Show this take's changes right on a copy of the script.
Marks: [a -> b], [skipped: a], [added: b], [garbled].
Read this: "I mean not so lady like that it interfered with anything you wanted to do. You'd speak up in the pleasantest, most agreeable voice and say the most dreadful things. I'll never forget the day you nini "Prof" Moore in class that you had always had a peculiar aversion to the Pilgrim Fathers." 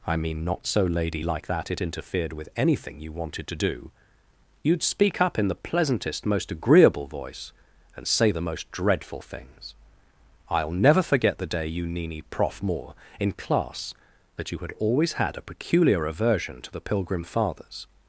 "I mean not so lady like that it interfered with anything you wanted to do. You'd speak up in the pleasantest, most agreeable voice and say the most dreadful things. I'll never forget the day you nini "Prof" Moore in class that you had always had a peculiar aversion to the Pilgrim Fathers."